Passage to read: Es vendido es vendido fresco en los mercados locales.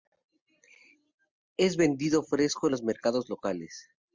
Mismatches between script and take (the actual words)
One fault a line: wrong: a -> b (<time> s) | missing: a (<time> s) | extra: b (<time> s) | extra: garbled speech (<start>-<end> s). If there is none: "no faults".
missing: es vendido (2.2 s)